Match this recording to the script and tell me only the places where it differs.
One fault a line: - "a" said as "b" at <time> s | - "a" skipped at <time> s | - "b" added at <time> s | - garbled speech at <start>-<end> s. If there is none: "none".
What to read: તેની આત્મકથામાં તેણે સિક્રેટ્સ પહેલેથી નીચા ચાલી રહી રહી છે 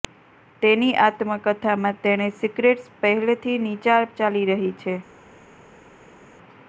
- "રહી" skipped at 4.7 s